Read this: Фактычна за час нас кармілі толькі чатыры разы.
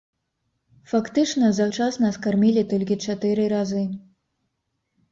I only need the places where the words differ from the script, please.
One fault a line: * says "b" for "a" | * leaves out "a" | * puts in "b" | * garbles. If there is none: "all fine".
all fine